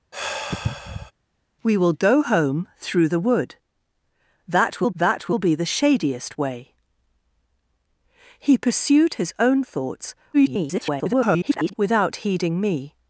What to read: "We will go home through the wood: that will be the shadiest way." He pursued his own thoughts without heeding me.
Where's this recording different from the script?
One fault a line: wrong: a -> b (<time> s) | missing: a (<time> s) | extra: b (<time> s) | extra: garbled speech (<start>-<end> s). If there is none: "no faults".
extra: that will (4.9 s)
extra: garbled speech (10.3-11.7 s)